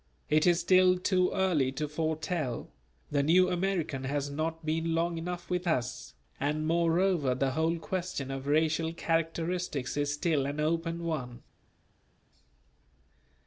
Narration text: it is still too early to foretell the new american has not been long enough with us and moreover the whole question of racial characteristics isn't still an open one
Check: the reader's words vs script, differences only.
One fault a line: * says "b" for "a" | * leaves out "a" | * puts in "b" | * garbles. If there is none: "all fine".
* says "is" for "isn't"